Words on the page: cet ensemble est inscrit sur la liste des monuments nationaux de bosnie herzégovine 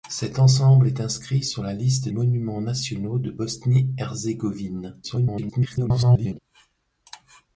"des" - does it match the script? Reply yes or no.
no